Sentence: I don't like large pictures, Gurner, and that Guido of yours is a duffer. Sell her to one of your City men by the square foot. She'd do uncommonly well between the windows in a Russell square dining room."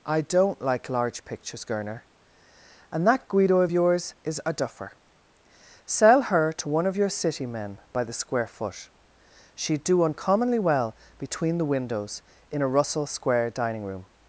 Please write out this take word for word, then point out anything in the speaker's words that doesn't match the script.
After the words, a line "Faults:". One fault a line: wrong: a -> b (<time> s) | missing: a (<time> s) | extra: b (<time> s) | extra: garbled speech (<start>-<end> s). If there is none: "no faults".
I don't like large pictures, Gurner, and that Guido of yours is a duffer. Sell her to one of your City men by the square foot. She'd do uncommonly well between the windows in a Russell square dining room."
Faults:
no faults